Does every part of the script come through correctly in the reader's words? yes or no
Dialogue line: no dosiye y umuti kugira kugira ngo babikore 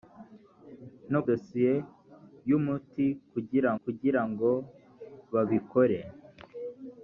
yes